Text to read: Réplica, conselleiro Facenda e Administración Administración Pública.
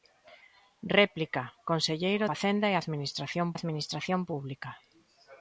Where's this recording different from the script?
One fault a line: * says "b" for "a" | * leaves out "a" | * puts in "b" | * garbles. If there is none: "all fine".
all fine